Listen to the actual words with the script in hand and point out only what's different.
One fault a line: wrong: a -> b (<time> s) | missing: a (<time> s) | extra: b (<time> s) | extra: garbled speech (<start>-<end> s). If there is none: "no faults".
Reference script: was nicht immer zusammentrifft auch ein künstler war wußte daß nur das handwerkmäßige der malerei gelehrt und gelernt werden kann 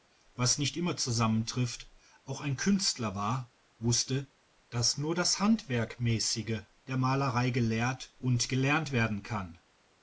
no faults